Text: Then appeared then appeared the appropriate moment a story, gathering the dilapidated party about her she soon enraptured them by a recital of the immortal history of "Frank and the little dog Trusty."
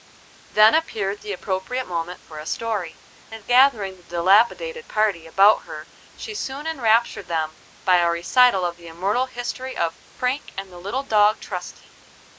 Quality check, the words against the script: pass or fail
fail